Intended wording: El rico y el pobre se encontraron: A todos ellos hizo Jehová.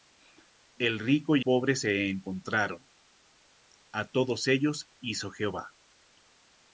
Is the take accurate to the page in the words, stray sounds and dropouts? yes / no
no